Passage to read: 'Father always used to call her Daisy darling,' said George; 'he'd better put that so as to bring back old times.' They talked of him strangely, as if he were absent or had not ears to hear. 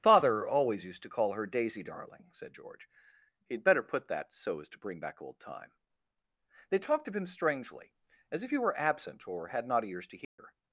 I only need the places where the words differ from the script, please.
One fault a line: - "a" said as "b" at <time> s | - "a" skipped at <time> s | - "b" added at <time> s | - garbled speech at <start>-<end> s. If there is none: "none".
- "times" said as "time" at 5.4 s